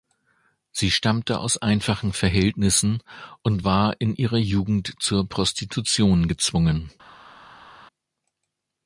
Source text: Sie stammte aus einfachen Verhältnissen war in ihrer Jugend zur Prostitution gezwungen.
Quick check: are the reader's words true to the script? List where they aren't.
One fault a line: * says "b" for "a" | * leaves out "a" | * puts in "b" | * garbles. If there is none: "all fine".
* puts in "und"